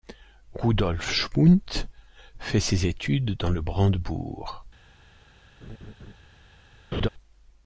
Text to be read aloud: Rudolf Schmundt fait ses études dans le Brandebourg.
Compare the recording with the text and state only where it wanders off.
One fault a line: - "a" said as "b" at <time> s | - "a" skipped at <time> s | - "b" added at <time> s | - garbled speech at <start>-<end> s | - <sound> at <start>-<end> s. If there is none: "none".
- laugh at 5.6-6.1 s
- laugh at 6.9-7.1 s